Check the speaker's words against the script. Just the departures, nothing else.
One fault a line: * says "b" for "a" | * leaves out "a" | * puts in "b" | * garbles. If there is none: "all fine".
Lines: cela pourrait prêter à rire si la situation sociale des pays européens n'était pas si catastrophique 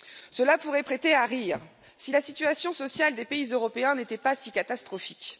all fine